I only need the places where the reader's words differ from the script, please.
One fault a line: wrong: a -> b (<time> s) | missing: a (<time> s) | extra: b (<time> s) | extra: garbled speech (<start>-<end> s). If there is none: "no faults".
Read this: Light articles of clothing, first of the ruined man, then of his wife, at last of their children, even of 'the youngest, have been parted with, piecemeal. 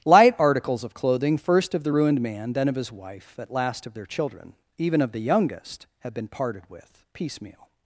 no faults